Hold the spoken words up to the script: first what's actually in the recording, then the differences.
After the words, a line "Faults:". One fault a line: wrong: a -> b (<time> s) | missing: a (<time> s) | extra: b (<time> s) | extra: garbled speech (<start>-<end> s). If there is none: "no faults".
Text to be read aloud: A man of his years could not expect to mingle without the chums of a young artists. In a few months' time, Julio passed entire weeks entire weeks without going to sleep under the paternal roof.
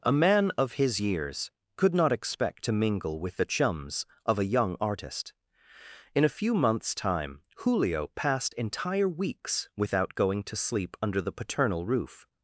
A man of his years could not expect to mingle with the chums of a young artist. In a few months' time, Julio passed entire weeks without going to sleep under the paternal roof.
Faults:
wrong: without -> with (3.2 s)
wrong: artists -> artist (4.8 s)
missing: entire weeks (9.7 s)